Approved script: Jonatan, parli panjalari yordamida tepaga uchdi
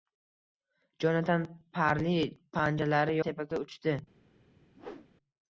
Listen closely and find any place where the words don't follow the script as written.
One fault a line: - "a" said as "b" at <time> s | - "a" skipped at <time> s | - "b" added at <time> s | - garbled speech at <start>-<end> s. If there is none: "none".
- "yordamida" skipped at 3.2 s